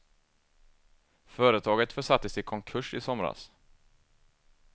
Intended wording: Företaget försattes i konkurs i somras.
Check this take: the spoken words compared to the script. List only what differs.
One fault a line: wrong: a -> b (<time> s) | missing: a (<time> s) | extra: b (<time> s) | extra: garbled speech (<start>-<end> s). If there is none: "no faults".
no faults